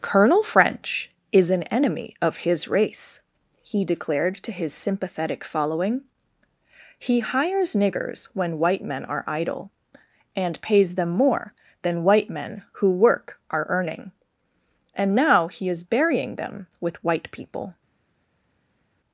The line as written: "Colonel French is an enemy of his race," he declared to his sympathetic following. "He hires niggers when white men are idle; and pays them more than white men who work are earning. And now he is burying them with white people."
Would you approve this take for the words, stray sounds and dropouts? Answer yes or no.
yes